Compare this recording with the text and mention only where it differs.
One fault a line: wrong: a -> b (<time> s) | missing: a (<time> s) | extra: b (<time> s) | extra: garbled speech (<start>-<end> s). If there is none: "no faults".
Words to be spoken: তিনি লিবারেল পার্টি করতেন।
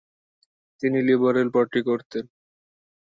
no faults